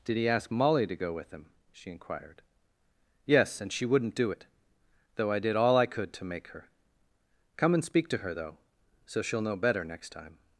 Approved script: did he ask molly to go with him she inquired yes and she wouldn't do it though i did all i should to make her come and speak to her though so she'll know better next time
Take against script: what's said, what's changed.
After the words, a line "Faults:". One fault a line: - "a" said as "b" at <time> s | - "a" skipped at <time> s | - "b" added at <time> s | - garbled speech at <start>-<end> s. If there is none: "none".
did he ask molly to go with him she inquired yes and she wouldn't do it though i did all i could to make her come and speak to her though so she'll know better next time
Faults:
- "should" said as "could" at 5.9 s